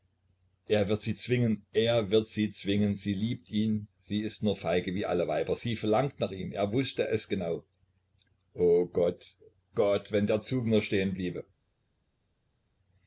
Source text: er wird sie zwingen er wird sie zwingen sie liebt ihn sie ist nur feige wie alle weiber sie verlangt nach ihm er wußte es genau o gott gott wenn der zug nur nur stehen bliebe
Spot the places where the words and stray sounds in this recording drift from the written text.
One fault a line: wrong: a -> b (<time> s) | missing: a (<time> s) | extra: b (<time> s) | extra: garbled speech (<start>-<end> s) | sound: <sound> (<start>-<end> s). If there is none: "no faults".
missing: nur (10.8 s)